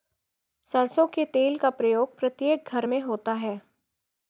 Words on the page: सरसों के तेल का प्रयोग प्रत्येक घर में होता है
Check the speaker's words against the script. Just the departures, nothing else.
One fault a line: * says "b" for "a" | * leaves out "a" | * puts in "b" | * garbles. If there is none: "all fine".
all fine